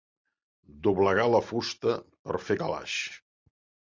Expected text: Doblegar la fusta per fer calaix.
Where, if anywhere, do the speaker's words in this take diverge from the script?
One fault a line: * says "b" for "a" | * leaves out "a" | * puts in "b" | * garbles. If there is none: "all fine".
all fine